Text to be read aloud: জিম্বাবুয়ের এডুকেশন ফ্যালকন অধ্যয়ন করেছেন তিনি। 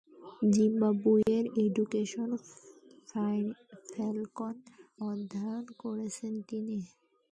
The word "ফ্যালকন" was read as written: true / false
true